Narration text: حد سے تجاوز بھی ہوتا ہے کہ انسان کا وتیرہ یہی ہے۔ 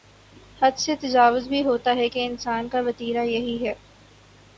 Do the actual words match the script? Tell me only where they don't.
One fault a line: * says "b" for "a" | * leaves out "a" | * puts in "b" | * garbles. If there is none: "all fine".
all fine